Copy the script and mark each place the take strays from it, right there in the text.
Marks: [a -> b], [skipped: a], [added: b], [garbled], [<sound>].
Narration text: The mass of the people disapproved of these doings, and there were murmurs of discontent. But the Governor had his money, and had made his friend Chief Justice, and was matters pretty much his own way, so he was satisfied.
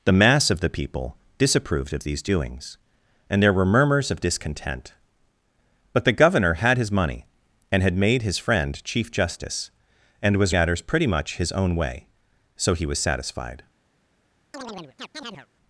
The mass of the people disapproved of these doings, and there were murmurs of discontent. But the Governor had his money, and had made his friend Chief Justice, and was matters pretty much his own way, so he was satisfied. [chirp]